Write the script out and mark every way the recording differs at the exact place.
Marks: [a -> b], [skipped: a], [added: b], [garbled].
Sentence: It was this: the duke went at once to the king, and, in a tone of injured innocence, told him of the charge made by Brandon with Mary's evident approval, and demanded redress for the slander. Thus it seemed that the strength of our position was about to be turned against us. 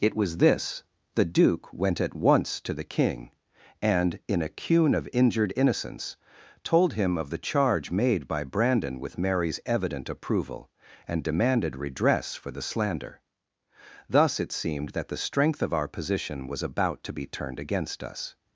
It was this: the duke went at once to the king, and, in a [tone -> cune] of injured innocence, told him of the charge made by Brandon with Mary's evident approval, and demanded redress for the slander. Thus it seemed that the strength of our position was about to be turned against us.